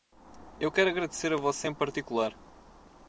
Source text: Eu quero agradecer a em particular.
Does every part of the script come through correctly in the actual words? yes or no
no